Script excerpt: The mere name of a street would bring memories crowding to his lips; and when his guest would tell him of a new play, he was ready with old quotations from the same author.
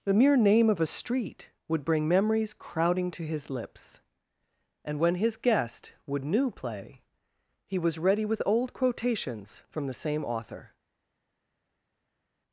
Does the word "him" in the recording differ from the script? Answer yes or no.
yes